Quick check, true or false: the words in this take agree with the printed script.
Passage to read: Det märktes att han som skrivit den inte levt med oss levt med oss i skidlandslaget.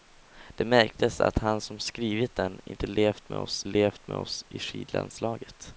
true